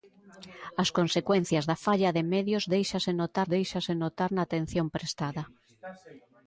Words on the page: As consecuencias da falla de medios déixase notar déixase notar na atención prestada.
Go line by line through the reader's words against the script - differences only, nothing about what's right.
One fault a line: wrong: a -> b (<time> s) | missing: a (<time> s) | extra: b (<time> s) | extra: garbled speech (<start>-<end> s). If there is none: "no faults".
no faults